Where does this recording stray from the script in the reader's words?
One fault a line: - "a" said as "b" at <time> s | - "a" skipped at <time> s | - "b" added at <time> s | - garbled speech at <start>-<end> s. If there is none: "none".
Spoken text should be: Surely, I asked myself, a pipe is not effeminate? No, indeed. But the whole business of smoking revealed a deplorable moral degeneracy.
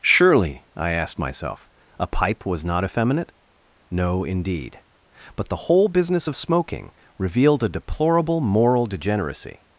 - "is" said as "was" at 2.5 s